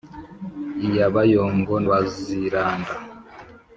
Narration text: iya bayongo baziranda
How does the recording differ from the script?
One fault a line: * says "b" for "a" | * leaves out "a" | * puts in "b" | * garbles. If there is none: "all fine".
all fine